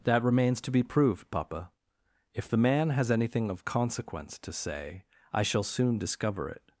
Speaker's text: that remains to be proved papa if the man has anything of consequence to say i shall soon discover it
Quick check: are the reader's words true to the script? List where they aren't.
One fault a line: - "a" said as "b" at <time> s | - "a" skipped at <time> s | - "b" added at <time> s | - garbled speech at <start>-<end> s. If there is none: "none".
none